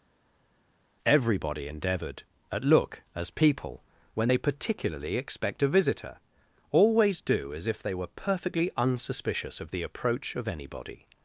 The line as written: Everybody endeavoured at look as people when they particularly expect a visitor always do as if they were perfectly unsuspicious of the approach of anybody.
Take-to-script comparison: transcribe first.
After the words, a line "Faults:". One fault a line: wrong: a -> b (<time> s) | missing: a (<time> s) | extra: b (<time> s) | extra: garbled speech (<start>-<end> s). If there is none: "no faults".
Everybody endeavoured at look as people when they particularly expect a visitor always do as if they were perfectly unsuspicious of the approach of anybody.
Faults:
no faults